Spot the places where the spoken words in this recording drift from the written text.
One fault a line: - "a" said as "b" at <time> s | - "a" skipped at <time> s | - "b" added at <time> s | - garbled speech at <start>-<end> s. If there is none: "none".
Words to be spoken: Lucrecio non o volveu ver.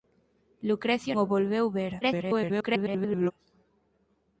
- "non" skipped at 1.1 s
- garbled speech at 2.0-3.3 s